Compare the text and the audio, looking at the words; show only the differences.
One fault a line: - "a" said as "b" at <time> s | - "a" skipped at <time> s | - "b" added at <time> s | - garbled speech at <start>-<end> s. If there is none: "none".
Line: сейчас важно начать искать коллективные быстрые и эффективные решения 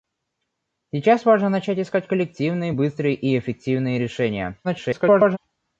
- garbled speech at 4.6-5.4 s